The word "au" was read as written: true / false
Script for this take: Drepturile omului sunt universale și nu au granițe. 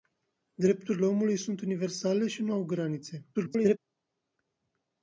true